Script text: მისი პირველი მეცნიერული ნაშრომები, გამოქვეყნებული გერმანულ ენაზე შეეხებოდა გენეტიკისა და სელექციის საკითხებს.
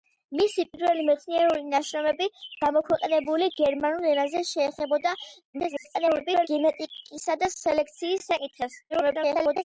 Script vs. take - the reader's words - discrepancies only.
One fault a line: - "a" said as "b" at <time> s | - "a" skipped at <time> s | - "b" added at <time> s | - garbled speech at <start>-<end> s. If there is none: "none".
- garbled speech at 5.5-6.5 s
- garbled speech at 8.9-9.6 s